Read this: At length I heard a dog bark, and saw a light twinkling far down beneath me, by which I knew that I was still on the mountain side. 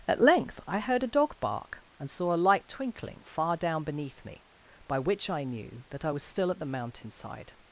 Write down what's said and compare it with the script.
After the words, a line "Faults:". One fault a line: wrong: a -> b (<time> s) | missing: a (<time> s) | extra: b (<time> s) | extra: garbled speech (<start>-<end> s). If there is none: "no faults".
At length I heard a dog bark, and saw a light twinkling far down beneath me, by which I knew that I was still at the mountain side.
Faults:
wrong: on -> at (6.5 s)